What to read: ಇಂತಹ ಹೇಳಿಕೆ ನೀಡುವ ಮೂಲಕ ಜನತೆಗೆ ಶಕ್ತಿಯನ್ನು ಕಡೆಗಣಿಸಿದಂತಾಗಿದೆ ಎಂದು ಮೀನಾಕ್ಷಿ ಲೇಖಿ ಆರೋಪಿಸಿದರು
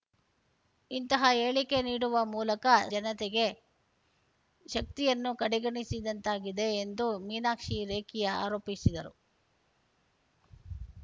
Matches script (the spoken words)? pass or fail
pass